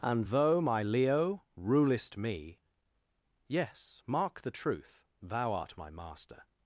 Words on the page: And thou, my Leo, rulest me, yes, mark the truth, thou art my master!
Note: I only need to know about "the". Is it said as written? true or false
true